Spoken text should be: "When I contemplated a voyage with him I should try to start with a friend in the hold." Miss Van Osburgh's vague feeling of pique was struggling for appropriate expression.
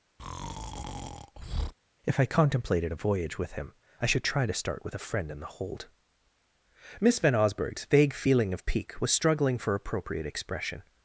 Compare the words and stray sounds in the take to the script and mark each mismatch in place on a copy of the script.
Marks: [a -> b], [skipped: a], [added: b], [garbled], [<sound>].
[breath] ["When -> If] I contemplated a voyage with him I should try to start with a friend in the hold." Miss Van Osburgh's vague feeling of pique was struggling for appropriate expression.